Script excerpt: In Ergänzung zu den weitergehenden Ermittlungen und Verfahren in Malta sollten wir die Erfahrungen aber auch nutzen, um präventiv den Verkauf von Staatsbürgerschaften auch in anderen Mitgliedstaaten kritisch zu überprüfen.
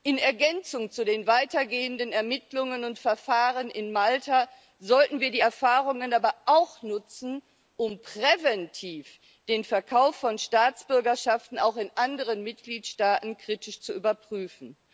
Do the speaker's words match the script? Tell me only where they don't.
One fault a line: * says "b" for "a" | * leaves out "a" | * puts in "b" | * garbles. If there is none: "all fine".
all fine